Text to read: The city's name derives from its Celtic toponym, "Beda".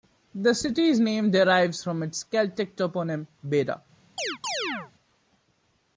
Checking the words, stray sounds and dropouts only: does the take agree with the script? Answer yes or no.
no